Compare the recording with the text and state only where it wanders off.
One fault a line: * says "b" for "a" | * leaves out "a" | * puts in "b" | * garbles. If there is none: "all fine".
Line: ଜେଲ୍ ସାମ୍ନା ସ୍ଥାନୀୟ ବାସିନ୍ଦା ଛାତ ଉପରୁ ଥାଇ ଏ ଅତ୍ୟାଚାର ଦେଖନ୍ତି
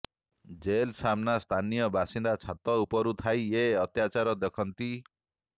all fine